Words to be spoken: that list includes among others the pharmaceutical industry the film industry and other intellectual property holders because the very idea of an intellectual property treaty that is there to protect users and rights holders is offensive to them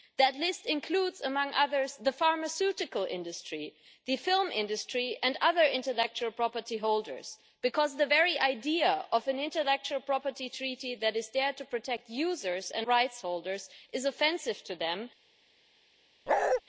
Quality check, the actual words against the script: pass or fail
pass